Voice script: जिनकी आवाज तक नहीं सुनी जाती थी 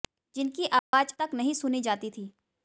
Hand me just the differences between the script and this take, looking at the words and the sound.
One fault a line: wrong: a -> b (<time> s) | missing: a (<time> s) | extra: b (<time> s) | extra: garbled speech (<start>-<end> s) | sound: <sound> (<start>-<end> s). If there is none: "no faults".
sound: dropout (0.8-0.9 s)